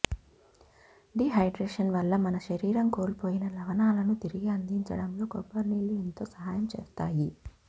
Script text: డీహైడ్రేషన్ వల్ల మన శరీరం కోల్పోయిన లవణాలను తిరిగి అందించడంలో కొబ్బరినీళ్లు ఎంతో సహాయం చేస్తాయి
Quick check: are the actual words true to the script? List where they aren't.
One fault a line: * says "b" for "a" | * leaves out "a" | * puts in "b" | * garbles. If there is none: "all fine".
all fine